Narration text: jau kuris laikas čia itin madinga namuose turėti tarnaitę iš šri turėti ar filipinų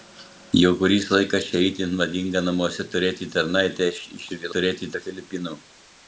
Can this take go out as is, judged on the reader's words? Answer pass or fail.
pass